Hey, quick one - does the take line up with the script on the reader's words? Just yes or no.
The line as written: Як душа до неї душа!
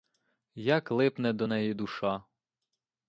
no